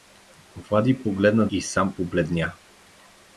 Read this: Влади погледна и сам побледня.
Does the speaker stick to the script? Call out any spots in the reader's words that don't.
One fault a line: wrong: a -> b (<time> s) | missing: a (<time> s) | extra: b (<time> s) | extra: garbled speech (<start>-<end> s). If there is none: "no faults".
no faults